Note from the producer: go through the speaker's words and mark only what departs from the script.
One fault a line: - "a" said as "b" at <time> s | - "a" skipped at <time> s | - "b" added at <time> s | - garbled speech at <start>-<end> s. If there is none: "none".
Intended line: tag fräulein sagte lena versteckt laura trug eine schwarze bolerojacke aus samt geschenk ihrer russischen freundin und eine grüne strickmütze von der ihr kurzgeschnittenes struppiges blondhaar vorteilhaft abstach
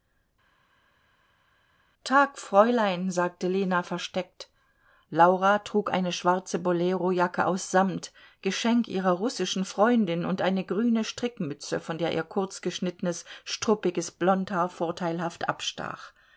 none